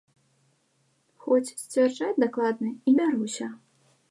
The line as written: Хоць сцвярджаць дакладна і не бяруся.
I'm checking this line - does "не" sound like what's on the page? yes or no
no